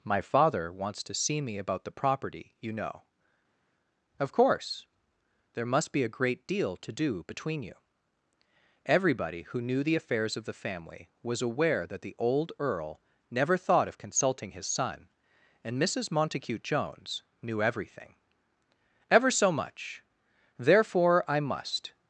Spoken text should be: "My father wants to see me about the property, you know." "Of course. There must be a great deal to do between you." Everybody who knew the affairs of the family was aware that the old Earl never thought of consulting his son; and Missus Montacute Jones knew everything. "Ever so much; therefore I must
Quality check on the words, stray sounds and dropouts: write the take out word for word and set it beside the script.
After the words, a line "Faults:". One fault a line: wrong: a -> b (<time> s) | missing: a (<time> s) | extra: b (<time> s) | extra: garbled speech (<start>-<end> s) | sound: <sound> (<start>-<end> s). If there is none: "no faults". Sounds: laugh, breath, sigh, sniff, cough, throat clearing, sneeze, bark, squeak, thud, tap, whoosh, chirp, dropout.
"My father wants to see me about the property, you know." "Of course. There must be a great deal to do between you." Everybody who knew the affairs of the family was aware that the old Earl never thought of consulting his son; and Missus Montacute Jones knew everything. "Ever so much; therefore I must
Faults:
no faults